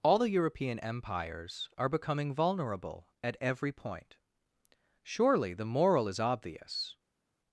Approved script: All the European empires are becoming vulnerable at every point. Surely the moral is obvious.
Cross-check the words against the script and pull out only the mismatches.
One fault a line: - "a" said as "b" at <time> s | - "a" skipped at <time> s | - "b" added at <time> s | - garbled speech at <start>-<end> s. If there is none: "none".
none